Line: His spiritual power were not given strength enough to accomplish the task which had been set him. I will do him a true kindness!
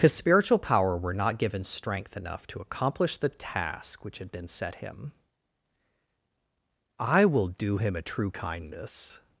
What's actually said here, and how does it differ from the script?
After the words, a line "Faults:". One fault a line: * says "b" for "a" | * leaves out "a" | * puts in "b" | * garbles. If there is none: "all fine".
His spiritual power were not given strength enough to accomplish the task which had been set him. I will do him a true kindness!
Faults:
all fine